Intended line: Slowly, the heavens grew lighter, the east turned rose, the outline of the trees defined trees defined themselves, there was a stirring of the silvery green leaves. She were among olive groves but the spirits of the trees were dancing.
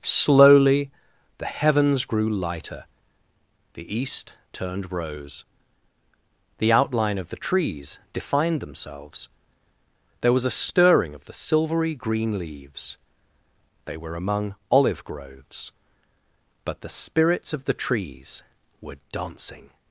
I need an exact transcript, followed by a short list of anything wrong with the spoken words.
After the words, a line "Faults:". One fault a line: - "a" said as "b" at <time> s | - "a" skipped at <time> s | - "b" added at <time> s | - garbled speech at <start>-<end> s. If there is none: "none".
Slowly, the heavens grew lighter, the east turned rose, the outline of the trees defined themselves, there was a stirring of the silvery green leaves. They were among olive groves but the spirits of the trees were dancing.
Faults:
- "trees defined" skipped at 8.6 s
- "She" said as "They" at 13.8 s